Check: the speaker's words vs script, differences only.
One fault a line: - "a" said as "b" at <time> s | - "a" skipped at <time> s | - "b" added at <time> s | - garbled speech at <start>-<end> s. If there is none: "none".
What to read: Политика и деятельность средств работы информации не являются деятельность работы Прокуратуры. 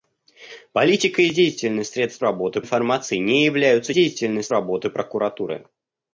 none